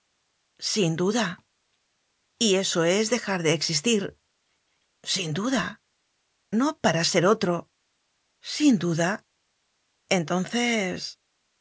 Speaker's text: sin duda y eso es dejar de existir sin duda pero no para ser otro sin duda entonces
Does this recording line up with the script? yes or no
no